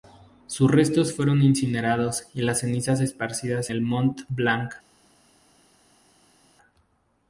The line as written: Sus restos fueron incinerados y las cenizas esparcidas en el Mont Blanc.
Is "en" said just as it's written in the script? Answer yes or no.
no